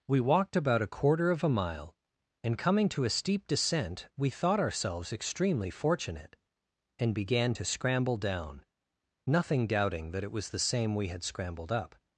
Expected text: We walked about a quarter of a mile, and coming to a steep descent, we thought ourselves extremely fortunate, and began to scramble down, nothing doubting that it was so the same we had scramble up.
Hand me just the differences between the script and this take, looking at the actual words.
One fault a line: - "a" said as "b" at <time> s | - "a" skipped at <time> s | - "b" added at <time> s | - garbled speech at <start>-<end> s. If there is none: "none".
- "so" skipped at 10.5 s
- "scramble" said as "scrambled" at 11.2 s